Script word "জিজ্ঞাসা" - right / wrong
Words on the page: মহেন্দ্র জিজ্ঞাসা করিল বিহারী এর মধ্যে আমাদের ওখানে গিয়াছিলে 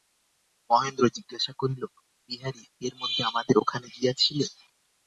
right